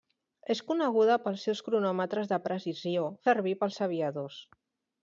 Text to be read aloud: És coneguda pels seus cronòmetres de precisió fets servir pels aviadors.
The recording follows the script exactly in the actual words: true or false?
false